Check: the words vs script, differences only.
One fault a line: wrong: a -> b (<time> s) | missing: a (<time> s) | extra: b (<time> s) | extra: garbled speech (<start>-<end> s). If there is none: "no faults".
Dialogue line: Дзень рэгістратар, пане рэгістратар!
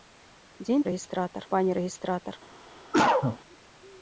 no faults